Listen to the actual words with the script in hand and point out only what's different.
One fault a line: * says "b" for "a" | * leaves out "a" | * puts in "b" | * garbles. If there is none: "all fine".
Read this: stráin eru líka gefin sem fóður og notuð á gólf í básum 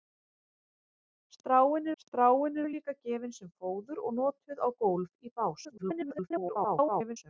* puts in "stráin"
* garbles